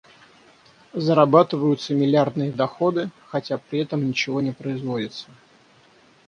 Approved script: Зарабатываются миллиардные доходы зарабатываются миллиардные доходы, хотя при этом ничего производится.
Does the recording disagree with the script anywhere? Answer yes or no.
yes